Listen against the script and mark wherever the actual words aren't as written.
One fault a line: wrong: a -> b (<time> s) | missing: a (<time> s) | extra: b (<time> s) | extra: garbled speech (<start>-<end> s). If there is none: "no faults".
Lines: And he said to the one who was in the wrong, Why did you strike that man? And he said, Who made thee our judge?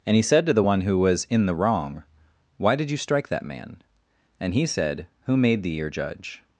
wrong: our -> your (5.8 s)